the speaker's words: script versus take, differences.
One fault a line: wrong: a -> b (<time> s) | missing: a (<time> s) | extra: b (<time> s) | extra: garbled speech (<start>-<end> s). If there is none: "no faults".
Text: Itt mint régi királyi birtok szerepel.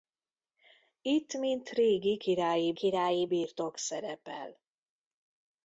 extra: királyi (2.7 s)